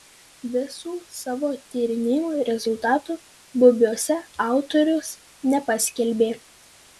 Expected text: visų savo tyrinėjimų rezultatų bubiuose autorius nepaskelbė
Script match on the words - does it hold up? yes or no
yes